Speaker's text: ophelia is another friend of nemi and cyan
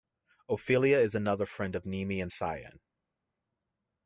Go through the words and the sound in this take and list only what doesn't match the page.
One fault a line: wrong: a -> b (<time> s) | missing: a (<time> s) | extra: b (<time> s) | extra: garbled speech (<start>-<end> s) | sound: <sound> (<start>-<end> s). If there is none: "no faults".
no faults